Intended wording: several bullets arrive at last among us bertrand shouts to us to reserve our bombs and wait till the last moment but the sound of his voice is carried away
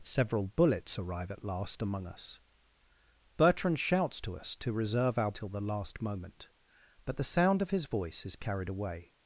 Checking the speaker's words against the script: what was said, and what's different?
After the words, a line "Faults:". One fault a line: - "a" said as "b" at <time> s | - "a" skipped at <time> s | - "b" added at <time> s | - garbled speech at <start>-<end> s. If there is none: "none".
several bullets arrive at last among us bertrand shouts to us to reserve our till the last moment but the sound of his voice is carried away
Faults:
- "bombs and wait" skipped at 5.3 s